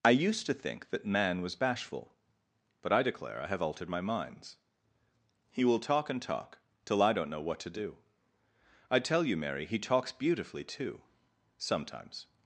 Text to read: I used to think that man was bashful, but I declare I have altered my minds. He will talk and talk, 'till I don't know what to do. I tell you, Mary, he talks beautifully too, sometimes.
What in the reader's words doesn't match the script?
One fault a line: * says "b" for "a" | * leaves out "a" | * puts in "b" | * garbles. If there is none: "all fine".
all fine